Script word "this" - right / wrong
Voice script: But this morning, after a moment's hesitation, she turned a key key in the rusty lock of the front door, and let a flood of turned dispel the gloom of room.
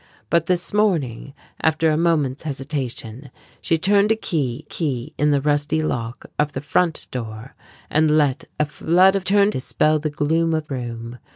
right